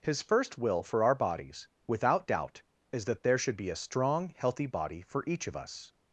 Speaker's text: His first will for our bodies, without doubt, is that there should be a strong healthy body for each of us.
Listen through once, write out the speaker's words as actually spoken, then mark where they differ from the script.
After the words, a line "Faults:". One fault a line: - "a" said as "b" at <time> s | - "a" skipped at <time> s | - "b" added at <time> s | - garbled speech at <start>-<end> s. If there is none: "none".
His first will for our bodies, without doubt, is that there should be a strong healthy body for each of us.
Faults:
none